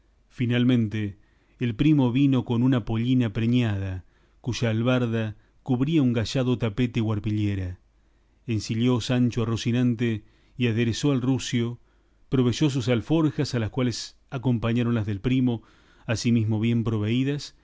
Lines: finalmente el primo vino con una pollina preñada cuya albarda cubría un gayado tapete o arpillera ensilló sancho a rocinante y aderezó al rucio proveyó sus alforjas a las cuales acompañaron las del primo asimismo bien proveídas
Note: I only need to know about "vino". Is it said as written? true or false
true